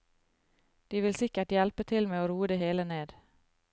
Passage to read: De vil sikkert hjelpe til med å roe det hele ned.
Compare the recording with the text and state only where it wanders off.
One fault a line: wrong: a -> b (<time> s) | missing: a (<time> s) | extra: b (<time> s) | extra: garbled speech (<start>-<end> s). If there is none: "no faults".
no faults